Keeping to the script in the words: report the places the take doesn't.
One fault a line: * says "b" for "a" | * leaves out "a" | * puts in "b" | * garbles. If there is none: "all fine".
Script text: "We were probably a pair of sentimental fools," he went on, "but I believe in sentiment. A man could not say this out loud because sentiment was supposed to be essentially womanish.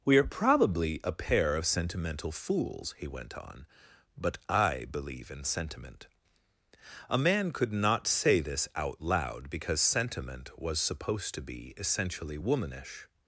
* says "are" for "were"